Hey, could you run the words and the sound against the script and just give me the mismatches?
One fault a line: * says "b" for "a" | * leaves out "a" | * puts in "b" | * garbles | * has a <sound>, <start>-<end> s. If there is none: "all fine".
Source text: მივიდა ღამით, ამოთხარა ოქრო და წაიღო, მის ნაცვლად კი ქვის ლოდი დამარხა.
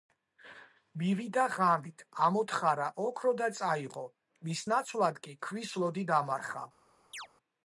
* has a chirp, 7.1-7.3 s